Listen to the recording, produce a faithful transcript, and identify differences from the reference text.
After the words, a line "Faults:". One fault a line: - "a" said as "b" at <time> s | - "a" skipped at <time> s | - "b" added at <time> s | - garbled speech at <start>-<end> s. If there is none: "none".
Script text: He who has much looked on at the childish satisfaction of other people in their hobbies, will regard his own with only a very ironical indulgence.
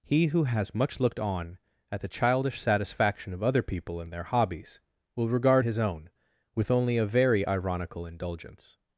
He who has much looked on at the childish satisfaction of other people in their hobbies, will regard his own with only a very ironical indulgence.
Faults:
none